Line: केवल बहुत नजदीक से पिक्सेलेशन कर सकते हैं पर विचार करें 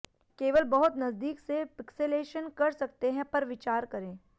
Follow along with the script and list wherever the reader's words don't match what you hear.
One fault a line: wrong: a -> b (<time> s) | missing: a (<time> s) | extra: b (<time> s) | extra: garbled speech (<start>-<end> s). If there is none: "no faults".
no faults